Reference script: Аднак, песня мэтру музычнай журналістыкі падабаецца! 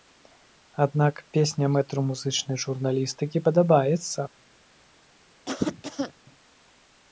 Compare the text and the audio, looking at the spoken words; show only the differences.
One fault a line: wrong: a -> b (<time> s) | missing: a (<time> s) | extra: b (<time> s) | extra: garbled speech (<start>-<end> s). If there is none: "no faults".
no faults